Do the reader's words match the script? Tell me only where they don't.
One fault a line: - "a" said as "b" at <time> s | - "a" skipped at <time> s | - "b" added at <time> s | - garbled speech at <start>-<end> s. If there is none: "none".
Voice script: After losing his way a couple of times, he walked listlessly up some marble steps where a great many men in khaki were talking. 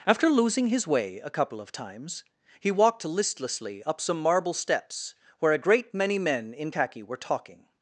none